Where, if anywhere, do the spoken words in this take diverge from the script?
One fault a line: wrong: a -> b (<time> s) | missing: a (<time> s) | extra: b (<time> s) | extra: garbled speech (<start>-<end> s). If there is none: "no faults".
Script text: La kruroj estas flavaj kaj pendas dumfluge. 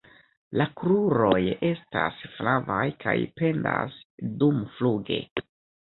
no faults